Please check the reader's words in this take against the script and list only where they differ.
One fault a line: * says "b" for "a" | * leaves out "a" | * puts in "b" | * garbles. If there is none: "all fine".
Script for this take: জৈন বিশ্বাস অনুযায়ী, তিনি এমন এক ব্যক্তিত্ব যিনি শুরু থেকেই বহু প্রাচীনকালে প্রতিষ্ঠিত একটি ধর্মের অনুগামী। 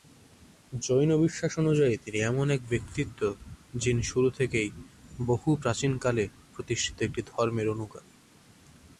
all fine